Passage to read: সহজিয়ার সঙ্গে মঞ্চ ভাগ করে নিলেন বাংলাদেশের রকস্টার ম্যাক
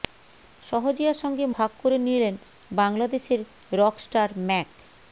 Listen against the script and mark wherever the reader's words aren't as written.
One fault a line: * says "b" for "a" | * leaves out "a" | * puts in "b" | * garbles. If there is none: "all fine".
* leaves out "মঞ্চ"